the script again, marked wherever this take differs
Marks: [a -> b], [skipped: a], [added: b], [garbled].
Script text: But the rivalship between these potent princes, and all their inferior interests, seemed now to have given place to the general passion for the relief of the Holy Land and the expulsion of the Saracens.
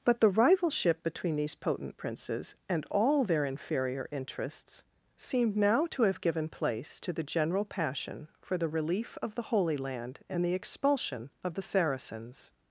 But the rivalship between these potent princes, and all their inferior interests, seemed now to have given place to the general passion for the relief of the Holy Land and the expulsion of the Saracens.